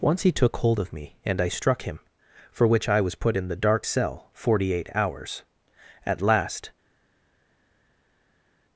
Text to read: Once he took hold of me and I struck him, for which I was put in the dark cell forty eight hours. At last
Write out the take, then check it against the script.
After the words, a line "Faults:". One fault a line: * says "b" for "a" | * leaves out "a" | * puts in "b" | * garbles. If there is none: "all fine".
Once he took hold of me and I struck him, for which I was put in the dark cell forty eight hours. At last
Faults:
all fine